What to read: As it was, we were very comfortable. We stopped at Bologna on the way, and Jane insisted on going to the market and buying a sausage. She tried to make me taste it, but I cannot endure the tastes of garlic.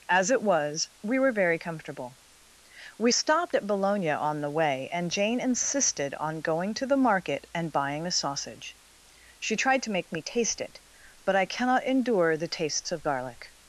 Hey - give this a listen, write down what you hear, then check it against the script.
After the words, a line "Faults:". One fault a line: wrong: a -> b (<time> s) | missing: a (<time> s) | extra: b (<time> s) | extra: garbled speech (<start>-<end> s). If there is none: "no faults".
As it was, we were very comfortable. We stopped at Bologna on the way, and Jane insisted on going to the market and buying a sausage. She tried to make me taste it, but I cannot endure the tastes of garlic.
Faults:
no faults